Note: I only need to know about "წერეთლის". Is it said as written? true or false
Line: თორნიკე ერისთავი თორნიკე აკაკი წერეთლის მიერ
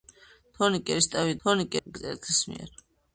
true